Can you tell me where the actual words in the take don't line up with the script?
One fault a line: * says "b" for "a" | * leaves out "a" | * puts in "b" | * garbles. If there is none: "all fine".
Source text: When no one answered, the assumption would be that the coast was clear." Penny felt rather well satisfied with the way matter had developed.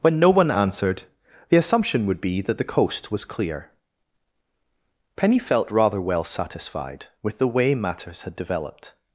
* says "matters" for "matter"